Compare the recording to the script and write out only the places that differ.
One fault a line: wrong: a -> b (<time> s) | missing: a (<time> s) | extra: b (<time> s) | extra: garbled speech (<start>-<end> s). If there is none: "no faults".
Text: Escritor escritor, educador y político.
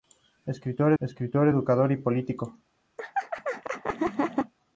no faults